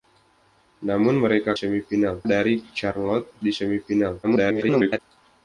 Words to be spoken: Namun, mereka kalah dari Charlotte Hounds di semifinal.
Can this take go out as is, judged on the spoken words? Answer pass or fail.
fail